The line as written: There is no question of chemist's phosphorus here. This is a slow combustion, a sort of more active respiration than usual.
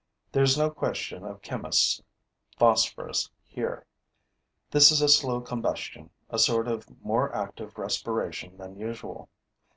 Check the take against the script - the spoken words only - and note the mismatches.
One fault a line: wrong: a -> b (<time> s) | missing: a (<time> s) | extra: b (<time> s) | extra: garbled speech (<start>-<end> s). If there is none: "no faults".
no faults